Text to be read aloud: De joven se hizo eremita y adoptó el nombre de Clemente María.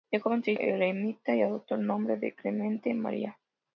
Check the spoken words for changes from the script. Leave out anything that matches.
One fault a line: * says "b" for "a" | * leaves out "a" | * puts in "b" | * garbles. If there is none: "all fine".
* leaves out "hizo"